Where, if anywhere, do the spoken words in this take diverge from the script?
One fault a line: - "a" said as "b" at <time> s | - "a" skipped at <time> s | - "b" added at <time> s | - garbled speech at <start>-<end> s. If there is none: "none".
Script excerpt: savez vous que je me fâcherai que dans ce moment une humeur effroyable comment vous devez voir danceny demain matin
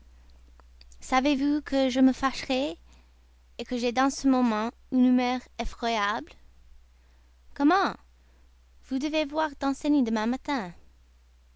- "j'ai" added at 3.8 s